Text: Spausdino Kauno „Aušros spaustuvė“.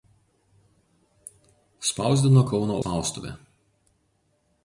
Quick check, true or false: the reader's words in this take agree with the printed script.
false